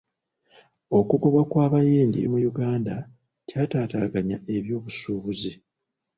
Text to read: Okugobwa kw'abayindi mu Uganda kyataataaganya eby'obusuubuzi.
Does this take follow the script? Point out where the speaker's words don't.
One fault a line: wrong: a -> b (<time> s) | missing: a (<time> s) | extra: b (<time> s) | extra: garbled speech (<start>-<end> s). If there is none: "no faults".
no faults